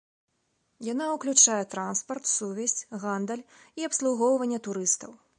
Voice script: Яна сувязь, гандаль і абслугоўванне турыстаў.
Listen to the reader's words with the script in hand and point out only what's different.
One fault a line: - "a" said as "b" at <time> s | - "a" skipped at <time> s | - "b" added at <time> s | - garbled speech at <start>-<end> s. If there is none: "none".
- "ўключае транспарт" added at 1.1 s